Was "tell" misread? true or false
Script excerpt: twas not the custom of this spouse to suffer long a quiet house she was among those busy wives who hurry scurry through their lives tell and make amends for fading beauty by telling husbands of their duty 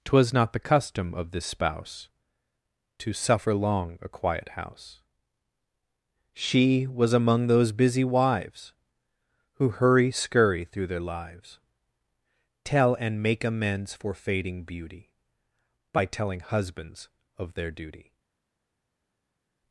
false